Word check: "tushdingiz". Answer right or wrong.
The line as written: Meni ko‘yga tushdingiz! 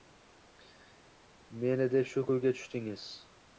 right